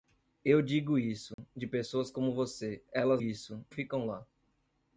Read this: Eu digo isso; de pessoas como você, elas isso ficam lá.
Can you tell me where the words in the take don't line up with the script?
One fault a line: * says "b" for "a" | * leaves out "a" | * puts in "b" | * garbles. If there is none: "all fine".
all fine